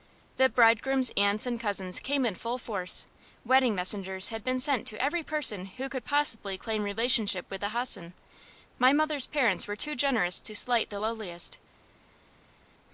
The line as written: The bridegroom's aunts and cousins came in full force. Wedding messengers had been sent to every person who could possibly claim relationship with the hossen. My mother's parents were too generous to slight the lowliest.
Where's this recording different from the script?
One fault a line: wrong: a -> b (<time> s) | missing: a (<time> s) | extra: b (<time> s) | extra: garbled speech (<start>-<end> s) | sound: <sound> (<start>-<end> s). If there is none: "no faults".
no faults